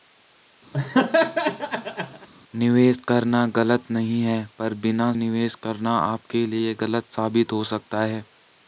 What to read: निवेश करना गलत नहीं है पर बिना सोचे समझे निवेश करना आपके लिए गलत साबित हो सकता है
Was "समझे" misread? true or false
true